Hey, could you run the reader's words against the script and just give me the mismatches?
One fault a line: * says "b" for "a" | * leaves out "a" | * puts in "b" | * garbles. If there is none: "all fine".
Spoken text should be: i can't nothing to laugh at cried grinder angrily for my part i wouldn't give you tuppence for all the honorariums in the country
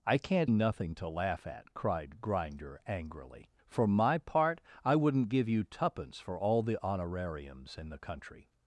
all fine